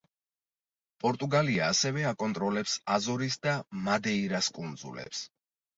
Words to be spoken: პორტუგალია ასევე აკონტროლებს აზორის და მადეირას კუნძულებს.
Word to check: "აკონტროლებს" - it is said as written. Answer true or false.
true